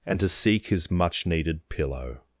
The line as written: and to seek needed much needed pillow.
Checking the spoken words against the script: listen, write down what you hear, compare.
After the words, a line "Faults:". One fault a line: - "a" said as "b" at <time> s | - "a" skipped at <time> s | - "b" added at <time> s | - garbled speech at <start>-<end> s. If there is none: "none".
and to seek his much needed pillow.
Faults:
- "needed" said as "his" at 0.7 s